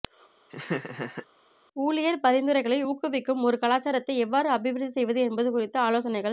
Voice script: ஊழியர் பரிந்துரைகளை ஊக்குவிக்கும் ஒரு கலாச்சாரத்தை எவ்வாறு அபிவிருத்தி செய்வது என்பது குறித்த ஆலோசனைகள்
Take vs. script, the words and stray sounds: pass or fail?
fail